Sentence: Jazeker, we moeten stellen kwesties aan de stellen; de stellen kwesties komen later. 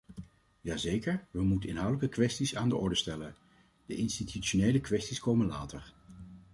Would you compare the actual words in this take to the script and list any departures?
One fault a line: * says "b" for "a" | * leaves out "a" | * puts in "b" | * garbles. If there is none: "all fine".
* says "inhoudelijke" for "stellen"
* puts in "orde"
* says "institutionele" for "stellen"